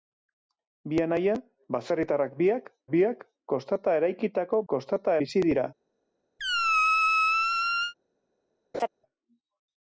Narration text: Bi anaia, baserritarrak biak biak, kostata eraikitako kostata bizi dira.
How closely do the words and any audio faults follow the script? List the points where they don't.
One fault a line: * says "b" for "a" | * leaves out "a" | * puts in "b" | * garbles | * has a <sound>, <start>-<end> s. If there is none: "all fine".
* has a squeak, 6.4-7.9 s
* has a laugh, 8.7-8.9 s